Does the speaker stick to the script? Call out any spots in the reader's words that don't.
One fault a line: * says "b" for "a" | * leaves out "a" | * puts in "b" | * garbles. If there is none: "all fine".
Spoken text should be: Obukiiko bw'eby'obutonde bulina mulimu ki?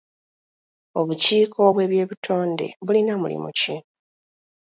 all fine